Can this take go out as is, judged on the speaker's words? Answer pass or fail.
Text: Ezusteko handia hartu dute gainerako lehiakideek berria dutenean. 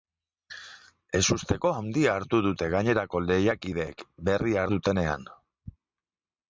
pass